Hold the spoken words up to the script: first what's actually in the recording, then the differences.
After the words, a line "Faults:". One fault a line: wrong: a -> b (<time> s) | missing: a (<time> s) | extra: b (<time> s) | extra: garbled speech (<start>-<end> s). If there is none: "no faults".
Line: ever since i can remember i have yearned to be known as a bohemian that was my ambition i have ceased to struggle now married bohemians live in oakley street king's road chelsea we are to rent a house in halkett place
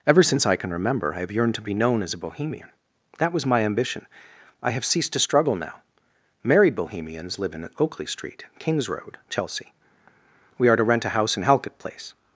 ever since i can remember i have yearned to be known as a bohemian that was my ambition i have ceased to struggle now married bohemians live in oakley street king's road chelsea we are to rent a house in halkett place
Faults:
no faults